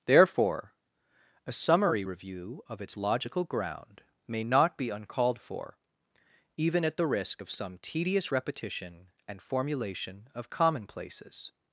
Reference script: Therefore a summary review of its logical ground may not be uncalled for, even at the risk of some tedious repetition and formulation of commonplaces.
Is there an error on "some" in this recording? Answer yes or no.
no